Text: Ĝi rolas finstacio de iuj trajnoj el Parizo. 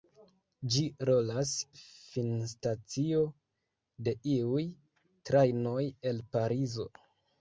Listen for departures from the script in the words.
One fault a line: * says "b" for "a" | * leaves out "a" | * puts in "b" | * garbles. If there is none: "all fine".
all fine